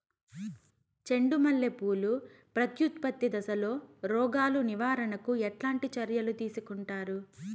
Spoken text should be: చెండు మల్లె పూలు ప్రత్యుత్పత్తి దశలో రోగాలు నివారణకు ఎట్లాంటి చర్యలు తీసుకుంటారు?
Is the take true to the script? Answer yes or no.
yes